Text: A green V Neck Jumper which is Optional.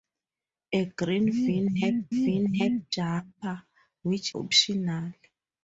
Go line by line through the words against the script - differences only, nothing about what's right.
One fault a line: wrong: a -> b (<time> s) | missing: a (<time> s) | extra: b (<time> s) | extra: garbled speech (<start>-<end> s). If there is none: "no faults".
extra: V Neck (2.1 s)
missing: is (4.4 s)